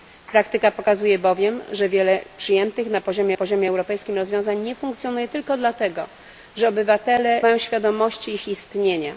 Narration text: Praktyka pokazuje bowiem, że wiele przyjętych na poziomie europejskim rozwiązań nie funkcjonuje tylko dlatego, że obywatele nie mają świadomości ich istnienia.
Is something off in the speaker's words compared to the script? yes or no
yes